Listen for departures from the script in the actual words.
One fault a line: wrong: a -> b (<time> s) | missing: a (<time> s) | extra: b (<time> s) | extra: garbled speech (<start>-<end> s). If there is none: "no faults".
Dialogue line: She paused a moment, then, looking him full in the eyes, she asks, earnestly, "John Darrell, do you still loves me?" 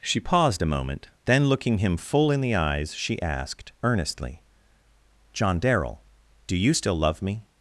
wrong: asks -> asked (3.2 s)
wrong: loves -> love (6.9 s)